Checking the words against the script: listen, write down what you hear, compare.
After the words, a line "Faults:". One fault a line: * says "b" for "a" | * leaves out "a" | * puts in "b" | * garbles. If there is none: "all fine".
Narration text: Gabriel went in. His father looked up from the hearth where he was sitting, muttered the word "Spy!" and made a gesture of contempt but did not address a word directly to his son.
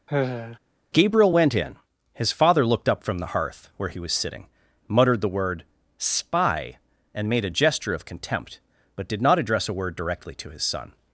Gabriel went in. His father looked up from the hearth where he was sitting, muttered the word "Spy!" and made a gesture of contempt but did not address a word directly to his son.
Faults:
all fine